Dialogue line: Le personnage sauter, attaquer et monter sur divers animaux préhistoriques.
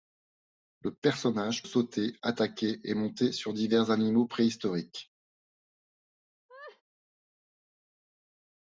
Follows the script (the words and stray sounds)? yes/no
no